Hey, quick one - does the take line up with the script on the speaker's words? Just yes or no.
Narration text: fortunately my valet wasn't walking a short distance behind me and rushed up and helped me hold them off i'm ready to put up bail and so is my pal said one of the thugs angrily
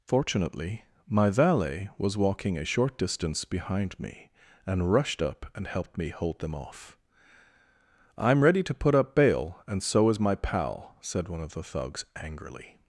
no